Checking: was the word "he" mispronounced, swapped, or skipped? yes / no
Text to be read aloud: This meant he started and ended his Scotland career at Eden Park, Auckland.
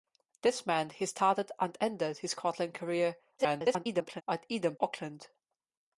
no